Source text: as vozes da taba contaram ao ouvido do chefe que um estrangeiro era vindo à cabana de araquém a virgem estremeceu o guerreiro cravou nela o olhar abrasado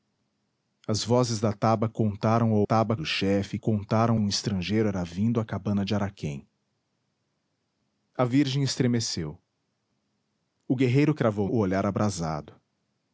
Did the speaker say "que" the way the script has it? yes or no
no